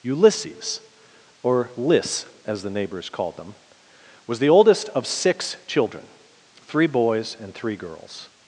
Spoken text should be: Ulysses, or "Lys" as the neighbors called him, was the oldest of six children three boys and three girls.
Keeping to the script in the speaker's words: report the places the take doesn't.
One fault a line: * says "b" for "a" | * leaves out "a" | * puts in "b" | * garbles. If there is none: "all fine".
* says "them" for "him"